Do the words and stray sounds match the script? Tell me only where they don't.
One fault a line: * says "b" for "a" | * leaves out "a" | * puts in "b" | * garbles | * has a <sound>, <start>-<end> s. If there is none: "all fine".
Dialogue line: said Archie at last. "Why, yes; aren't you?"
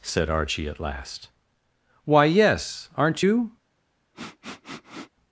* has a sniff, 4.1-5.1 s